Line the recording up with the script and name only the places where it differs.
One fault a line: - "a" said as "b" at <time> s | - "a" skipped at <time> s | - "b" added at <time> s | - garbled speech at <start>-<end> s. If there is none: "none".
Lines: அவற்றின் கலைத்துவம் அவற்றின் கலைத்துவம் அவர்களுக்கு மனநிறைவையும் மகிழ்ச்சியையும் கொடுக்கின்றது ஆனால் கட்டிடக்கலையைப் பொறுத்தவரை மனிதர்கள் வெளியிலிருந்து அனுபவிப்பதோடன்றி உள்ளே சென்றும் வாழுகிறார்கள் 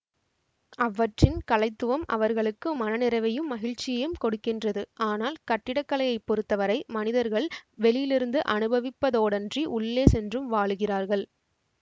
- "அவற்றின் கலைத்துவம்" skipped at 2.0 s